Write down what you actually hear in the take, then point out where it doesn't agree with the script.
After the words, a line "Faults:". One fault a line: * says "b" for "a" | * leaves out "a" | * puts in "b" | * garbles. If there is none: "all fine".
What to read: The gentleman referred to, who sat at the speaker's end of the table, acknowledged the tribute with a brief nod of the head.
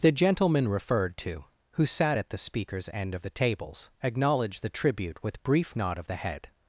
The gentleman referred to, who sat at the speaker's end of the tables, acknowledged the tribute with brief nod of the head.
Faults:
* says "tables" for "table"
* leaves out "a"